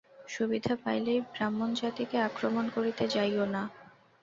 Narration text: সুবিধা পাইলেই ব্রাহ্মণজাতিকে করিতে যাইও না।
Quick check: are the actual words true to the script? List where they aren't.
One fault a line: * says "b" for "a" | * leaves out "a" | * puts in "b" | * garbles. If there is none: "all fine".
* puts in "আক্রমণ"